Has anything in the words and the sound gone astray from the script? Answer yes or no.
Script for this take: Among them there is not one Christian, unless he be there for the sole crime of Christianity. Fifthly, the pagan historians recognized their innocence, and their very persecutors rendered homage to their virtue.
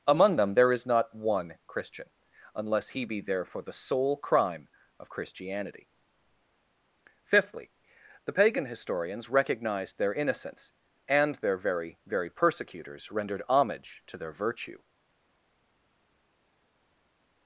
yes